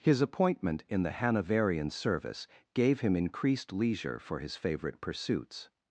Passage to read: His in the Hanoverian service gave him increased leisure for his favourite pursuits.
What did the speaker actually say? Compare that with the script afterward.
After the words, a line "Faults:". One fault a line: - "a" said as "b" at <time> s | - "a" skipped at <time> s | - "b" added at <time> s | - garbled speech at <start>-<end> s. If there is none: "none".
His appointment in the Hanoverian service gave him increased leisure for his favourite pursuits.
Faults:
- "appointment" added at 0.2 s